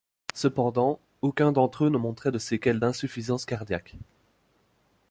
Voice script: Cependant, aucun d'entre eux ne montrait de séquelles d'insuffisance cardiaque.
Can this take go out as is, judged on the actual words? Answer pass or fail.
pass